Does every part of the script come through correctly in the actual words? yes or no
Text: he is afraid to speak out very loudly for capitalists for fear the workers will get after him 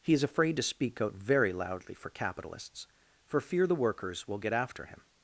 yes